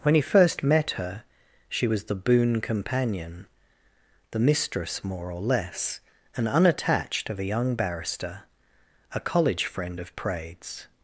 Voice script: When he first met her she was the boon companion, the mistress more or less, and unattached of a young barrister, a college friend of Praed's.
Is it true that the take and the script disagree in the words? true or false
false